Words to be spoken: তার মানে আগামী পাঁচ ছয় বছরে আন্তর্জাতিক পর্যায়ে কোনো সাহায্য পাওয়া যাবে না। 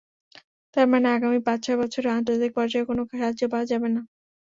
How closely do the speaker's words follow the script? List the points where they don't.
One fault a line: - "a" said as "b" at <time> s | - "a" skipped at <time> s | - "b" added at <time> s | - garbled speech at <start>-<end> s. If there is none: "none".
none